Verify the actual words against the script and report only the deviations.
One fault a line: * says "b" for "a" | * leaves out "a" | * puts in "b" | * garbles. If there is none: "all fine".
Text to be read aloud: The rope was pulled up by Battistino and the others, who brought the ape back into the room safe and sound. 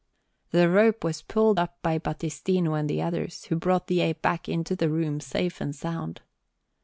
all fine